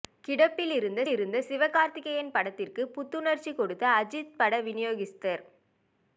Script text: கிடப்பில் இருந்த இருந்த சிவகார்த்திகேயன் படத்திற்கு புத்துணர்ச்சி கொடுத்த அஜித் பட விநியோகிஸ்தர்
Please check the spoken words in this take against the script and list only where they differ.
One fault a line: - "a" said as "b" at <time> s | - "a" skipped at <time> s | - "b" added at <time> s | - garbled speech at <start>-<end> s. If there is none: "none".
none